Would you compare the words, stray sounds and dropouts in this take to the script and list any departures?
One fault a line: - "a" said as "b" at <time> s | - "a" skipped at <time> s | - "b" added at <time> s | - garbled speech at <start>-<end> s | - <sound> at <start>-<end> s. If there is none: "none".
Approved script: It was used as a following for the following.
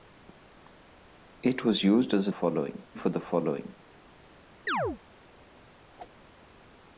- chirp at 4.7-5.0 s
- whoosh at 6.0-6.1 s